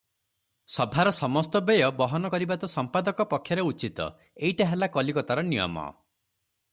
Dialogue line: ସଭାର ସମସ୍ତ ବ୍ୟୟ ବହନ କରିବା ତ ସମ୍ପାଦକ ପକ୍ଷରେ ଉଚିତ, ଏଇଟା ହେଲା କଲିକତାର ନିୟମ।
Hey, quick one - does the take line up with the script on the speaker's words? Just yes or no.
yes